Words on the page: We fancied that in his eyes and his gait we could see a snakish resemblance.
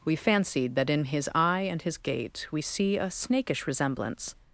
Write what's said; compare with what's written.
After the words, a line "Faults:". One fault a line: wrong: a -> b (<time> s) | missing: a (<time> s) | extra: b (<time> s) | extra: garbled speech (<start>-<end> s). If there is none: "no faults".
We fancied that in his eye and his gait we see a snakish resemblance.
Faults:
wrong: eyes -> eye (1.3 s)
missing: could (2.6 s)